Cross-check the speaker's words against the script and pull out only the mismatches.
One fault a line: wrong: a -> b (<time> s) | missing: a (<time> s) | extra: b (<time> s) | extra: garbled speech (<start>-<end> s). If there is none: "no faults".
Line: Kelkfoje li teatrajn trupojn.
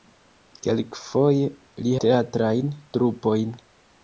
no faults